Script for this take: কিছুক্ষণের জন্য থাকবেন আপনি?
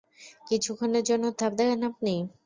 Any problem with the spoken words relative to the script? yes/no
no